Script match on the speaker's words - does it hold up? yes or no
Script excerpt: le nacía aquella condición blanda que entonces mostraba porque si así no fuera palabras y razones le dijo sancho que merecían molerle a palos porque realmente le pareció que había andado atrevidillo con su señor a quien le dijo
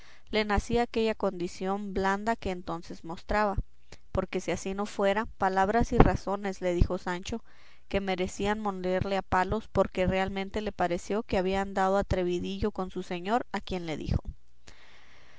yes